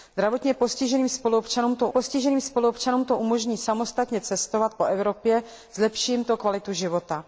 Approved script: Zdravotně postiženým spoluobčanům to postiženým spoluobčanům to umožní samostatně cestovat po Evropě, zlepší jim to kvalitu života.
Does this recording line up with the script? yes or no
yes